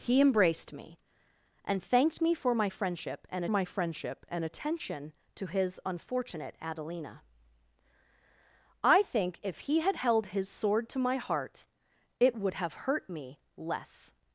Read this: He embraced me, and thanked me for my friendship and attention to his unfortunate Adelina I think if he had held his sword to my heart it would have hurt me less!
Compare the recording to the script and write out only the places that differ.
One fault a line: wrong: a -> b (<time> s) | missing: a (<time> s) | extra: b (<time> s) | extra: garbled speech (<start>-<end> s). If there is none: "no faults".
extra: my friendship and (3.5 s)